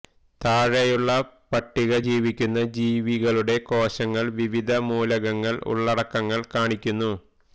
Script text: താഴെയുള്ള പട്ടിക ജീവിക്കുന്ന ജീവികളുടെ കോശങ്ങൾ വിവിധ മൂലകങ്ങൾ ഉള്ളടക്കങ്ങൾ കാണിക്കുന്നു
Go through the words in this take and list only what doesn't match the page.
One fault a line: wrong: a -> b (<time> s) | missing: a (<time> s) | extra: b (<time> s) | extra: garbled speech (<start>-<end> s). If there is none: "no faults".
no faults